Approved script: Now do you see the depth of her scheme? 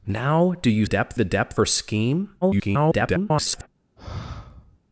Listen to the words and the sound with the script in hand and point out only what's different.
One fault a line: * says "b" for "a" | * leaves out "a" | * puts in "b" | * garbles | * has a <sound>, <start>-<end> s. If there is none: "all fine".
* says "depth" for "see"
* leaves out "of"
* garbles
* has a sigh, 4.0-4.8 s